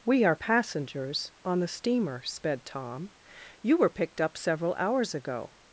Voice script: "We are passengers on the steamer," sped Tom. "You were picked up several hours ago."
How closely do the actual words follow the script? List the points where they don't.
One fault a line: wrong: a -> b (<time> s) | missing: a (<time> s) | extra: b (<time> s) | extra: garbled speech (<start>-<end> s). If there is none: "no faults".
no faults